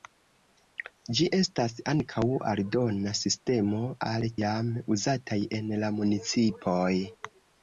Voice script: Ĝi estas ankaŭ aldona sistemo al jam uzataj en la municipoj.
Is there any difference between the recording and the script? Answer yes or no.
no